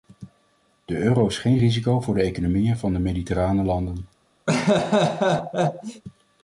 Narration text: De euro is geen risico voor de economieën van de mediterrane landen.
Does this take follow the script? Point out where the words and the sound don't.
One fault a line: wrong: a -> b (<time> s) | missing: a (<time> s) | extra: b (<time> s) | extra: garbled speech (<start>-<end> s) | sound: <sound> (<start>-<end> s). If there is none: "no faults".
sound: laugh (4.5-6.0 s)